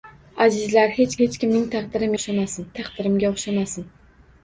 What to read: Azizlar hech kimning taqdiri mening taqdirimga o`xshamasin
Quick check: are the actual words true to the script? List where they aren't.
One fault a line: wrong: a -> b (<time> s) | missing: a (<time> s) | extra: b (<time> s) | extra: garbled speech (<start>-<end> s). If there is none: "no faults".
extra: hech (1.2 s)
wrong: mening -> o`xshamasin (2.2 s)